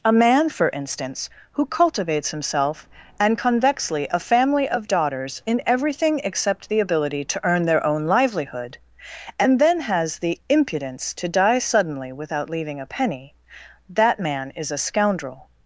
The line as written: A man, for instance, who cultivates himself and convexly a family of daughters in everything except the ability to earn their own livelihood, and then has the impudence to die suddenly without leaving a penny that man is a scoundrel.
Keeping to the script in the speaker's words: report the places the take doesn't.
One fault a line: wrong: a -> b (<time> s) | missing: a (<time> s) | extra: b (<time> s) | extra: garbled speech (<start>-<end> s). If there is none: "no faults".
no faults